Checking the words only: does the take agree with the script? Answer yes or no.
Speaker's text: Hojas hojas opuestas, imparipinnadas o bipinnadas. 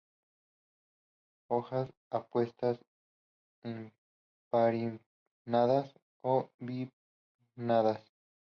no